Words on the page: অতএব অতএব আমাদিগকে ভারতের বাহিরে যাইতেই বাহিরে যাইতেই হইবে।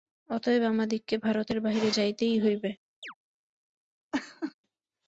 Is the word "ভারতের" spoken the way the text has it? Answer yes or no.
yes